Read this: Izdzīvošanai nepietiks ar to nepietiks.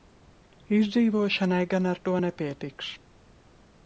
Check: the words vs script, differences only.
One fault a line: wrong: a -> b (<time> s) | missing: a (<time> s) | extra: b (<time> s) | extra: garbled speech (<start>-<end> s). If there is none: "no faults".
wrong: nepietiks -> gan (1.7 s)